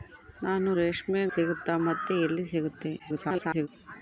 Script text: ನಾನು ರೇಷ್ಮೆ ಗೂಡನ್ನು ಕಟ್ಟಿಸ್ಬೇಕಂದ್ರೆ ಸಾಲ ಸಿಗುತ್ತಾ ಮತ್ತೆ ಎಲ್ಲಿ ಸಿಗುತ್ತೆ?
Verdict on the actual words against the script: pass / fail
fail